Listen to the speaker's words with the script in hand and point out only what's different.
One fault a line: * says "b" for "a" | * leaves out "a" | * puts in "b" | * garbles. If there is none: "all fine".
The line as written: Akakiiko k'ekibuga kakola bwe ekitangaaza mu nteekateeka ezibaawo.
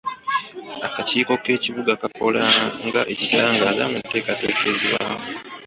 * says "nga" for "bwe"